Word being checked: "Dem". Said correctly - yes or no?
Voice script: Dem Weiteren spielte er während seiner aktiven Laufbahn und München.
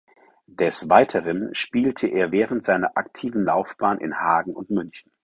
no